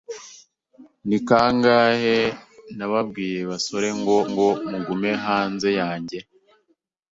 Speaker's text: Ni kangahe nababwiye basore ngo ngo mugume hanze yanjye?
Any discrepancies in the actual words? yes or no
no